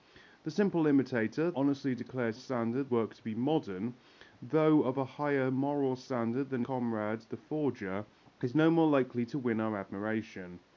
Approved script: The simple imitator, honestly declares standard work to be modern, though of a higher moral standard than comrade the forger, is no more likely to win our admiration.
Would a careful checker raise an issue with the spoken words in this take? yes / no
no